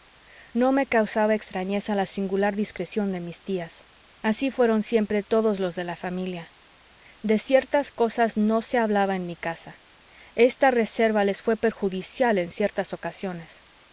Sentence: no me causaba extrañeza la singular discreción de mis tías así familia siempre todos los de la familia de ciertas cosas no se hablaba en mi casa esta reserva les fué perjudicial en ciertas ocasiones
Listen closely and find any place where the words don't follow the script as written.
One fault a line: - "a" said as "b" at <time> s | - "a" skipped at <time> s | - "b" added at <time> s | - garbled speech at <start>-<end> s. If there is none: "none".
- "familia" said as "fueron" at 4.5 s